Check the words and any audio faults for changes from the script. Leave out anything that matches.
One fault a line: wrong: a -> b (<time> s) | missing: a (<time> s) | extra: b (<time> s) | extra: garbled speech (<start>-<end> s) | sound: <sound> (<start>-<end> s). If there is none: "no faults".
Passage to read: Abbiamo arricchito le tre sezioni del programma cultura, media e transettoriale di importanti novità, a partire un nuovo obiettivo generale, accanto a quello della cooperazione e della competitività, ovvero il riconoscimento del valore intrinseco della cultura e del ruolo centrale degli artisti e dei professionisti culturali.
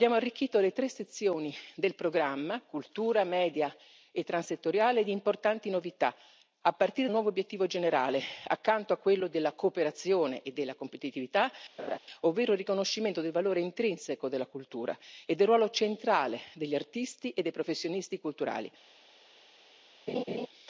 sound: laugh (11.8-12.0 s)
sound: laugh (20.1-20.5 s)